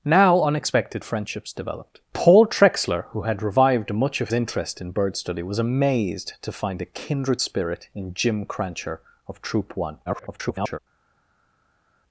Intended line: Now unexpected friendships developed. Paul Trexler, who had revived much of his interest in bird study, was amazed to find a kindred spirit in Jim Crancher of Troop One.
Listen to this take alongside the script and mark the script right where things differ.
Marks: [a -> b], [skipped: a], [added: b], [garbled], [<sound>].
Now unexpected friendships developed. Paul Trexler, who had revived much of [skipped: his] interest in bird study, was amazed to find a kindred spirit in Jim Crancher of Troop One. [garbled]